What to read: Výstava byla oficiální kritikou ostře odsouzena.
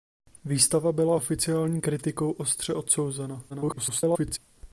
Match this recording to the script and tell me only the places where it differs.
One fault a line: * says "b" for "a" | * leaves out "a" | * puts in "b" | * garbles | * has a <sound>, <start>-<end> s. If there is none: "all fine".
* garbles